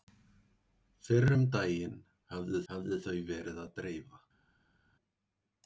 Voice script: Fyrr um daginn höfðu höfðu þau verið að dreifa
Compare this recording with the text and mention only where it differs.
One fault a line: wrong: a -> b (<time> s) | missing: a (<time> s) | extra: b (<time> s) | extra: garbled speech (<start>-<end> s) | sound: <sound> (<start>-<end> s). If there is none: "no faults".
no faults